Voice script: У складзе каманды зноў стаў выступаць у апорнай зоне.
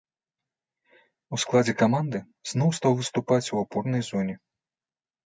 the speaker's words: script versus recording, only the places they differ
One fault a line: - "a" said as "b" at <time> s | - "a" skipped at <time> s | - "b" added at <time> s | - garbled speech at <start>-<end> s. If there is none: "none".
none